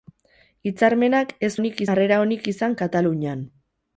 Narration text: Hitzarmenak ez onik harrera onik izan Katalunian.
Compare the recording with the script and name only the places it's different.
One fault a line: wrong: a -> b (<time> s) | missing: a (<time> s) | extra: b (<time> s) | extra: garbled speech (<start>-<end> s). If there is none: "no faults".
no faults